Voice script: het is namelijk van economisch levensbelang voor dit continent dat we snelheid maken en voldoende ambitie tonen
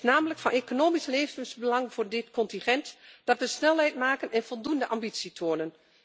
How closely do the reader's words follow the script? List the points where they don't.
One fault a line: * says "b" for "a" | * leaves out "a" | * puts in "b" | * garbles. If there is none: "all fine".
all fine